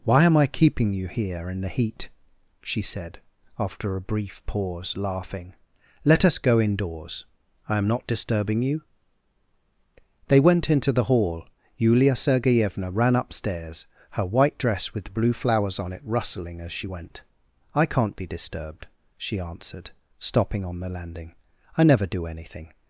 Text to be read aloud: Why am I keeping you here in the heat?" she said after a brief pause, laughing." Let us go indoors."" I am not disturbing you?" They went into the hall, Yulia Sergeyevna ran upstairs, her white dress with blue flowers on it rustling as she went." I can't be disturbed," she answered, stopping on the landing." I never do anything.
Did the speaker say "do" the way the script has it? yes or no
yes